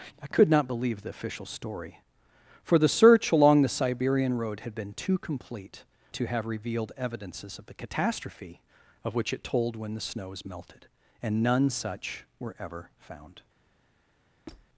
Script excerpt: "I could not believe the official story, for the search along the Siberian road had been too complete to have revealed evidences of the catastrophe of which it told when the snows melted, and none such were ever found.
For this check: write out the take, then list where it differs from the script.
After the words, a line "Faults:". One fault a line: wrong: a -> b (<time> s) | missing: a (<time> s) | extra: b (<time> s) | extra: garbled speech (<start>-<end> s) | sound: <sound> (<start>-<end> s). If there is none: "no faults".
"I could not believe the official story, for the search along the Siberian road had been too complete to have revealed evidences of the catastrophe of which it told when the snows melted, and none such were ever found.
Faults:
sound: squeak (14.5-14.7 s)